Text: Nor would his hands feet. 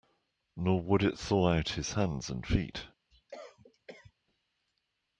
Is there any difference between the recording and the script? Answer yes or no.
yes